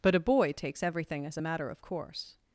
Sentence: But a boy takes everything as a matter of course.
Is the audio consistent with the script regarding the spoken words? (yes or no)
yes